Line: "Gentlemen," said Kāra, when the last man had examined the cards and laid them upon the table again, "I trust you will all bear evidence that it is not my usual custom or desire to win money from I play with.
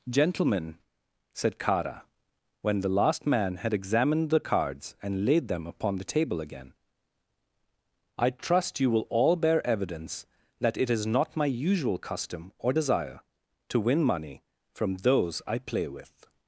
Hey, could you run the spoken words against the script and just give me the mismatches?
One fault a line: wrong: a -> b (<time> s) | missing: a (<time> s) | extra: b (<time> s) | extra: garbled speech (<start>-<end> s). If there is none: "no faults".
extra: those (15.0 s)